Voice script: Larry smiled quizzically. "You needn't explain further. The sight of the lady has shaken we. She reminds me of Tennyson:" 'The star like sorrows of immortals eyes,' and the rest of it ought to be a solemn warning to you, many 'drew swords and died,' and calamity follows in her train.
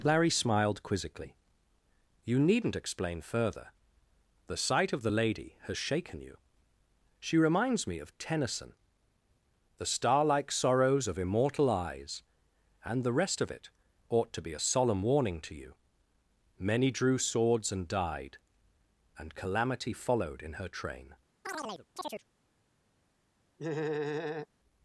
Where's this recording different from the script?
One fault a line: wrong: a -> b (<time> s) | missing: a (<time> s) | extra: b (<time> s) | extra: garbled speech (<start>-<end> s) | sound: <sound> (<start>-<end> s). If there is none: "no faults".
wrong: we -> you (6.2 s)
wrong: immortals -> immortal (11.2 s)
wrong: follows -> followed (19.9 s)
sound: chirp (21.4-22.2 s)
sound: laugh (23.6-24.5 s)